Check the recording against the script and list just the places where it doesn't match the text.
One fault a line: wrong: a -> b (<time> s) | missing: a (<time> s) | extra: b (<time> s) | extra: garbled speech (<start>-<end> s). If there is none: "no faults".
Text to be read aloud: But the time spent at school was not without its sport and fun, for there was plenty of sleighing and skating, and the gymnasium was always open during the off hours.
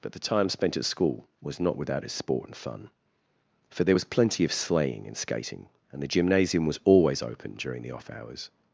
no faults